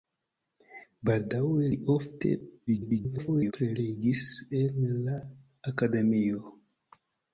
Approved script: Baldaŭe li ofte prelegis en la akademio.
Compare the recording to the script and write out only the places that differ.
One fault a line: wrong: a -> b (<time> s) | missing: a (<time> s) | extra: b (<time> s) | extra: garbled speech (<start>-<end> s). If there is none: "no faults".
extra: garbled speech (2.7-3.5 s)